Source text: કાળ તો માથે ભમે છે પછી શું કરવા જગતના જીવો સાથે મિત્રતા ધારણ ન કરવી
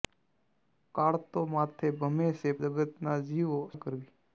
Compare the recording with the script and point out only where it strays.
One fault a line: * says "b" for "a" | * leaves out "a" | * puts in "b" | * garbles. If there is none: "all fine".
* leaves out "પછી શું કરવા"
* leaves out "સાથે મિત્રતા ધારણ"